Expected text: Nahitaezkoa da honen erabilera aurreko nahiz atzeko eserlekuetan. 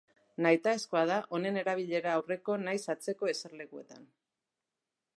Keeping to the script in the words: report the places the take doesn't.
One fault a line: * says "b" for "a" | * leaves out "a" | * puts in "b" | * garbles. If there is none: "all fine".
all fine